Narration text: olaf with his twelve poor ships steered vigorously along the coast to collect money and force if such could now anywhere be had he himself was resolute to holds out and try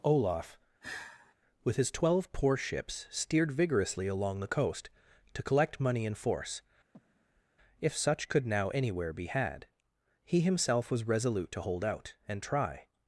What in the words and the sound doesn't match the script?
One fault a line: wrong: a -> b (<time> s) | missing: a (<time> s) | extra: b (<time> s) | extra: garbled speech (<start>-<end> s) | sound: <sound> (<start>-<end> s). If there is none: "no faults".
sound: sigh (0.8-1.3 s)
sound: breath (6.9-7.4 s)
wrong: holds -> hold (11.6 s)